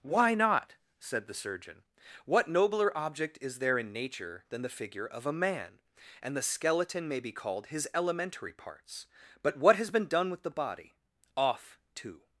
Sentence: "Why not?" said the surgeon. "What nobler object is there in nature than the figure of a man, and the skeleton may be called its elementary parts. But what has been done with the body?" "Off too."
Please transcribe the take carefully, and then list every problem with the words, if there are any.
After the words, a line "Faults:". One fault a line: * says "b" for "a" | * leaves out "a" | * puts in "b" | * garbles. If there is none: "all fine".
"Why not?" said the surgeon. "What nobler object is there in nature than the figure of a man, and the skeleton may be called his elementary parts. But what has been done with the body?" "Off too."
Faults:
* says "his" for "its"